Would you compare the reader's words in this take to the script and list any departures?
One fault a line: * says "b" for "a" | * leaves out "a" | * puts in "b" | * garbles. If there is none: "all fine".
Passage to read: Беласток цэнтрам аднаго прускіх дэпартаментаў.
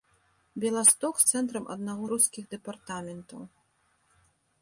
all fine